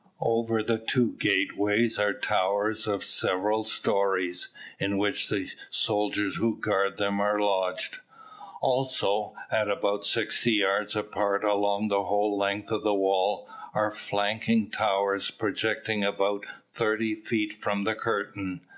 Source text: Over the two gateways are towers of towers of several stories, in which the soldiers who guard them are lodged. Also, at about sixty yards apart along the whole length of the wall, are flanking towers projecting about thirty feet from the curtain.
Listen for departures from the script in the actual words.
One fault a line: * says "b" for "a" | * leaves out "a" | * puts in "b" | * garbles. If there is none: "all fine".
* leaves out "towers of"